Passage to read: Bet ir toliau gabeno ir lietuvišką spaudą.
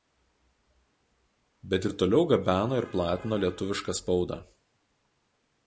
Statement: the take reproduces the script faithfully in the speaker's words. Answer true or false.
false